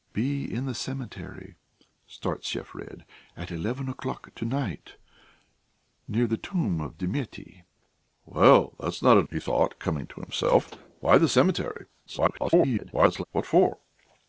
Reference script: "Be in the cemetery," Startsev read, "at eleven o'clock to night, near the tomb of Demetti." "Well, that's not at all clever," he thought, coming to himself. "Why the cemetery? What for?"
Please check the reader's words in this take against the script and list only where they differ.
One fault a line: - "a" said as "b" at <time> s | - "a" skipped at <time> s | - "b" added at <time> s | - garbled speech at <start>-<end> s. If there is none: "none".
- "all clever" skipped at 9.3 s
- garbled speech at 12.1-13.2 s